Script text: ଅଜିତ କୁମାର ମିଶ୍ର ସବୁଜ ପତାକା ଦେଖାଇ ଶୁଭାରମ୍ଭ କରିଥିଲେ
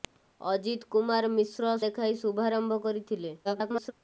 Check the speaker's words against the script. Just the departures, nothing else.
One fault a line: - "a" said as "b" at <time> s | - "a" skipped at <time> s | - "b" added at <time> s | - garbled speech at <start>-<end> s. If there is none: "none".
- "ସବୁଜ ପତାକା" skipped at 1.8 s
- garbled speech at 3.4-3.9 s